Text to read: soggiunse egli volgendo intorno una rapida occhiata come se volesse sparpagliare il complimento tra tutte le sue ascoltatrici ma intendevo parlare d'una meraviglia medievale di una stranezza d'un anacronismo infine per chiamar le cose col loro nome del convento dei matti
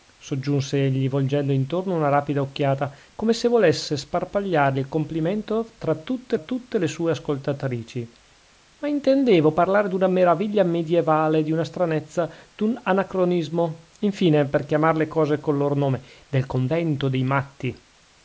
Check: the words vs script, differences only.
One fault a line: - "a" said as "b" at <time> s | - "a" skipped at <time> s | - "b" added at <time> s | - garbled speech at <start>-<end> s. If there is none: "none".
- "tutte" added at 6.3 s